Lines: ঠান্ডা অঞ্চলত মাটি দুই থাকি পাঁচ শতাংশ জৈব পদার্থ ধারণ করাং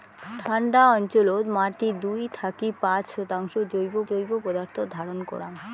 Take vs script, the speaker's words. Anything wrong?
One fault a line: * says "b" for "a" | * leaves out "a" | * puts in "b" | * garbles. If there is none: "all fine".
* puts in "জৈব"